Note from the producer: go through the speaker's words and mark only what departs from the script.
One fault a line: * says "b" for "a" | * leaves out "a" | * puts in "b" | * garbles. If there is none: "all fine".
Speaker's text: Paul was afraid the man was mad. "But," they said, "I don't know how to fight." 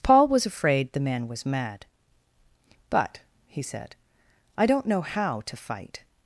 * says "he" for "they"